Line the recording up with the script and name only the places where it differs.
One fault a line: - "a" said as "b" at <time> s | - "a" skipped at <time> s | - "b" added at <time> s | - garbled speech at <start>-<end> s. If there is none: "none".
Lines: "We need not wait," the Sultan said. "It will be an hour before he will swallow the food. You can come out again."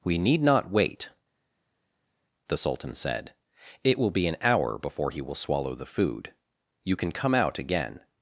none